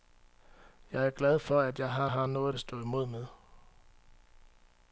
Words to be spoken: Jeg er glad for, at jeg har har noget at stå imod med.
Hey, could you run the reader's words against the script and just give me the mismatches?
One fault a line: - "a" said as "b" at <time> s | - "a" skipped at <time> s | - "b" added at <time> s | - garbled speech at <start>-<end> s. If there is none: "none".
none